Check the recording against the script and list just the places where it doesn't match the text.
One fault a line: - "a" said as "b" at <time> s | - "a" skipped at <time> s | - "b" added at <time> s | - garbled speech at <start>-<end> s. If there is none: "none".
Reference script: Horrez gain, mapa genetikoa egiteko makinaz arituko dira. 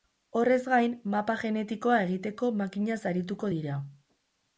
none